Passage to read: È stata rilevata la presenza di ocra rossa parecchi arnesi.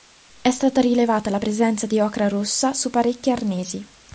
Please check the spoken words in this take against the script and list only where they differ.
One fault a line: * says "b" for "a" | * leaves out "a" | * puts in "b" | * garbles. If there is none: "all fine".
* puts in "su"